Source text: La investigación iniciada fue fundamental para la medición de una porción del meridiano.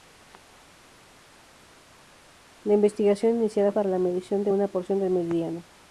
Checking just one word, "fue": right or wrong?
wrong